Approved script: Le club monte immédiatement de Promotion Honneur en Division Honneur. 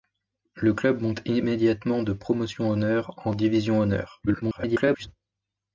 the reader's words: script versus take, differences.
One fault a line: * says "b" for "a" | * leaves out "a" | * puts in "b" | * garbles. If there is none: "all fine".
* garbles